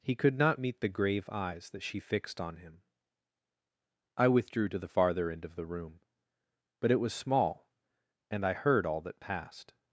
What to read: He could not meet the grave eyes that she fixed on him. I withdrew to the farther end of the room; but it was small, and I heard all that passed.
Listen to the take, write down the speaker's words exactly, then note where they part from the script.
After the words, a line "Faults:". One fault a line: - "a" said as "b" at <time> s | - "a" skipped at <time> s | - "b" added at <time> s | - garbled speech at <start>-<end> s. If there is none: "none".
He could not meet the grave eyes that she fixed on him. I withdrew to the farther end of the room; but it was small, and I heard all that passed.
Faults:
none